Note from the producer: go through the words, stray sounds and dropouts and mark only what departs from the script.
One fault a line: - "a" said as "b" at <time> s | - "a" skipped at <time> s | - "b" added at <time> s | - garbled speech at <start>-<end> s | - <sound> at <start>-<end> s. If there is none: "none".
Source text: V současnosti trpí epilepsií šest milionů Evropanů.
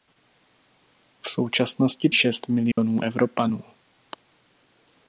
- "trpí epilepsií" skipped at 2.1 s
- dropout at 2.7-2.8 s